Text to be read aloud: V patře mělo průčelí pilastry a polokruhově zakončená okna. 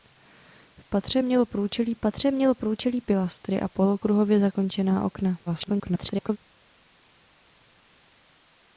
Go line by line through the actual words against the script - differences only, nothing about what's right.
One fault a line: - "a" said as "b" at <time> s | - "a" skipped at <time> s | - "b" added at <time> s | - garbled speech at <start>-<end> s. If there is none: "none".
- "patře mělo průčelí" added at 2.0 s
- garbled speech at 5.5-6.4 s